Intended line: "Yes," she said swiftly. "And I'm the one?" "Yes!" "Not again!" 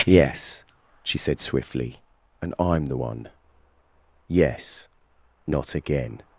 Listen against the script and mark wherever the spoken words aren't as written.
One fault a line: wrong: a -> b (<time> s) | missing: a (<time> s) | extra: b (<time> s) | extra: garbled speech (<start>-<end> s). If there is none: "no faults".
no faults